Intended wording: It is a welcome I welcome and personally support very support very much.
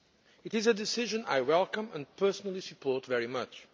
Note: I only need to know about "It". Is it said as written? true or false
true